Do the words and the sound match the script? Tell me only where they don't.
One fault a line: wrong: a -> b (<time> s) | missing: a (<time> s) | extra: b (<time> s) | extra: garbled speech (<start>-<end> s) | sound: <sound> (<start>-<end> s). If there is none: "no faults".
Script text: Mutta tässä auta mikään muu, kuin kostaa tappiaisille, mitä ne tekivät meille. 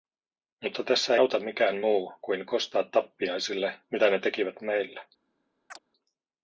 sound: chirp (5.7-5.8 s)